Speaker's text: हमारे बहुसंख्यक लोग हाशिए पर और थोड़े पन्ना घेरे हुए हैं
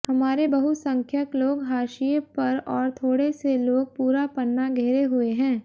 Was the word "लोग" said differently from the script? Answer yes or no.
no